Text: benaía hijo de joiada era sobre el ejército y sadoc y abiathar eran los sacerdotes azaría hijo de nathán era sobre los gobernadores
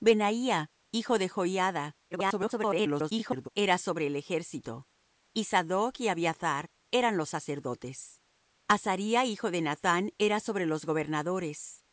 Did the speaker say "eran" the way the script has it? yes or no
yes